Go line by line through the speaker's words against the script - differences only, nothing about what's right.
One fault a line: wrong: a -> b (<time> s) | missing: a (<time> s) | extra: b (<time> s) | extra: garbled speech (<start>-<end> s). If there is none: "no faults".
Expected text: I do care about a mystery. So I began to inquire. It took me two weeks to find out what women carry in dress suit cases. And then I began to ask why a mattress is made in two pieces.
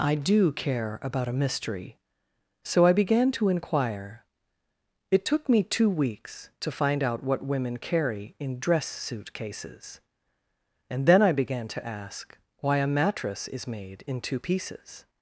no faults